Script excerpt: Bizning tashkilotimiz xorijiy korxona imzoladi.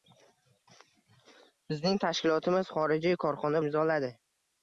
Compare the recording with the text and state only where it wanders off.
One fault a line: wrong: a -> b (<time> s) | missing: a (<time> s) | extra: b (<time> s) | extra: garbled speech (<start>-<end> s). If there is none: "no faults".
no faults